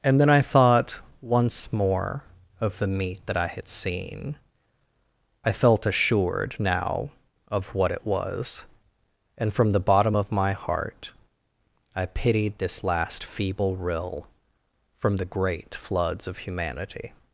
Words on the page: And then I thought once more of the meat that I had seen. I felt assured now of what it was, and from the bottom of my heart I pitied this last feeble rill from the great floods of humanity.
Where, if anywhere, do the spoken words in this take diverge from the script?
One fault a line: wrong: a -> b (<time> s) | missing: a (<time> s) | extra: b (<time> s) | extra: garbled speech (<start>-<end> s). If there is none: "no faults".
no faults